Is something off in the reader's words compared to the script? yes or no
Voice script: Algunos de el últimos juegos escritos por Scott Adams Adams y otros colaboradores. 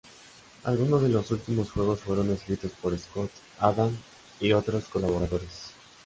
yes